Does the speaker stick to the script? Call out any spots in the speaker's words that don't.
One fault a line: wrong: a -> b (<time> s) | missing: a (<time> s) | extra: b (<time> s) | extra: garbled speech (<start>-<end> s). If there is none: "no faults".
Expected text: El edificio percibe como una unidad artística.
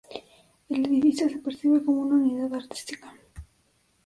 extra: se (1.3 s)